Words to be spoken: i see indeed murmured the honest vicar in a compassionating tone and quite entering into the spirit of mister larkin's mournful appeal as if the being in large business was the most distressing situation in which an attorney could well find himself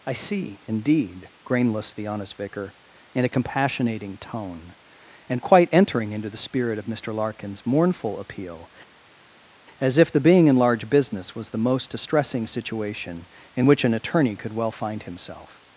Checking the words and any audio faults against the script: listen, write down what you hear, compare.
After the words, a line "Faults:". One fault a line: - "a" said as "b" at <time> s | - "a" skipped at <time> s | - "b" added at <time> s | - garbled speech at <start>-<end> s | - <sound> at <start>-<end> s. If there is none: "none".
i see indeed grainless the honest vicar in a compassionating tone and quite entering into the spirit of mister larkin's mournful appeal as if the being in large business was the most distressing situation in which an attorney could well find himself
Faults:
- "murmured" said as "grainless" at 1.4 s